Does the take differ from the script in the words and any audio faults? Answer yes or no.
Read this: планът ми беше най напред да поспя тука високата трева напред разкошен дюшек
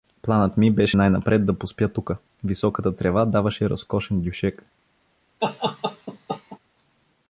yes